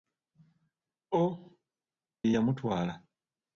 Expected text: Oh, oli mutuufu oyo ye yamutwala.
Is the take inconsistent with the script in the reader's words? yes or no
yes